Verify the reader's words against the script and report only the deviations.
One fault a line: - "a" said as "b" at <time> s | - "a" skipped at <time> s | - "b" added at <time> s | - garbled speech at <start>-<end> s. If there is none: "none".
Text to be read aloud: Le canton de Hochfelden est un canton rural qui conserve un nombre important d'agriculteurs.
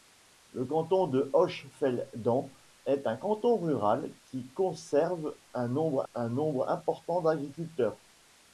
- "un nombre" added at 6.1 s